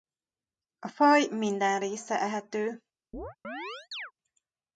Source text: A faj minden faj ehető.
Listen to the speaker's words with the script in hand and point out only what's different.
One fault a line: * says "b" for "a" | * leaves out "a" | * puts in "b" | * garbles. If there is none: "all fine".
* says "része" for "faj"